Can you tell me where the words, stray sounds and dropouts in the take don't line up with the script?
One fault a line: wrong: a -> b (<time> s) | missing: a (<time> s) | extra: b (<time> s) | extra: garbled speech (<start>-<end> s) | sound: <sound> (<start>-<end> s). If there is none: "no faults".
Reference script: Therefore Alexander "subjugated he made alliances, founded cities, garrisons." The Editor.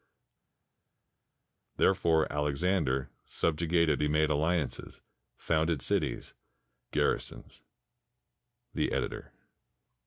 no faults